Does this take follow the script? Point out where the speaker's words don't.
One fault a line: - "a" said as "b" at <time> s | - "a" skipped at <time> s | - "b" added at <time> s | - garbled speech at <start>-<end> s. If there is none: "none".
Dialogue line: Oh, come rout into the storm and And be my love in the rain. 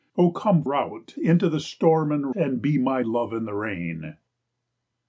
none